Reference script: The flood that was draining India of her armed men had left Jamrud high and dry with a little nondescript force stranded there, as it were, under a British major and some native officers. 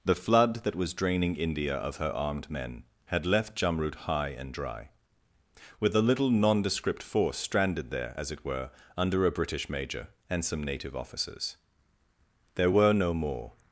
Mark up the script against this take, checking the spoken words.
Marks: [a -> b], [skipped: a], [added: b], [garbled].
The flood that was draining India of her armed men had left Jamrud high and dry with a little nondescript force stranded there, as it were, under a British major and some native officers. [added: There were no more]